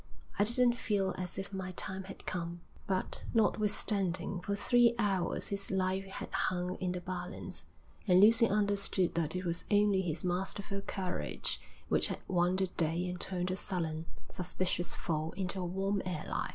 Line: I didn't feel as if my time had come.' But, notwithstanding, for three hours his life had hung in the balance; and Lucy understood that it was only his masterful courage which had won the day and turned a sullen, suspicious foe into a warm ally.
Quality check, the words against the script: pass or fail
pass